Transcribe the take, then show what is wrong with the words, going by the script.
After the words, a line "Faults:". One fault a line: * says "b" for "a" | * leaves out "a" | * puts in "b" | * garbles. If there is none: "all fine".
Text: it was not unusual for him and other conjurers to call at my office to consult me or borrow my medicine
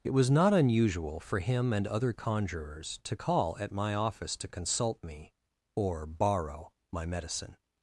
it was not unusual for him and other conjurers to call at my office to consult me or borrow my medicine
Faults:
all fine